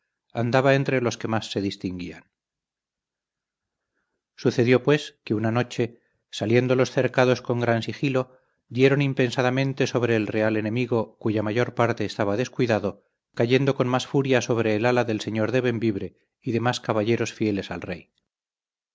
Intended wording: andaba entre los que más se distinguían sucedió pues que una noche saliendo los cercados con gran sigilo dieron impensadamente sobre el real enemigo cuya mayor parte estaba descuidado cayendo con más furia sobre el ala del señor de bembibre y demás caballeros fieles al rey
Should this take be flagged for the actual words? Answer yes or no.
no